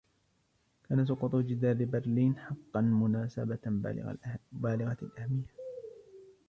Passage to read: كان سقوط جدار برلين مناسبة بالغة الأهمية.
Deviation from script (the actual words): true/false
true